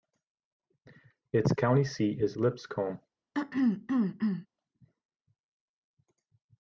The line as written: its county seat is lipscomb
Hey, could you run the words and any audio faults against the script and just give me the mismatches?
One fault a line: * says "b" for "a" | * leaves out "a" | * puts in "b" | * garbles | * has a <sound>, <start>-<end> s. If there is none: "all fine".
* has a throat clearing, 3.3-4.5 s